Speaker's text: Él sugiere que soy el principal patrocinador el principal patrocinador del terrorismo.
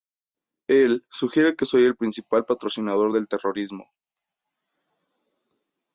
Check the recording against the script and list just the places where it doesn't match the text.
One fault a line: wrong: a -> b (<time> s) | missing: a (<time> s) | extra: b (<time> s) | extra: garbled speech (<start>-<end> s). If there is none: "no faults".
missing: el principal patrocinador (3.1 s)